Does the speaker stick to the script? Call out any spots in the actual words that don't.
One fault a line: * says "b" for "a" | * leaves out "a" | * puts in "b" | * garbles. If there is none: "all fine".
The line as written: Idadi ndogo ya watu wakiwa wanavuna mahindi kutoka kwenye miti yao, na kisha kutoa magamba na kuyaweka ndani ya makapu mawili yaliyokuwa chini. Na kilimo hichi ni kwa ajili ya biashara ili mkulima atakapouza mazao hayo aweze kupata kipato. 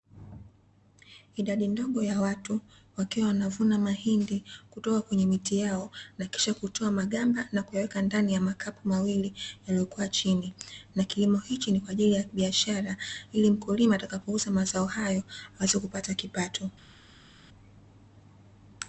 all fine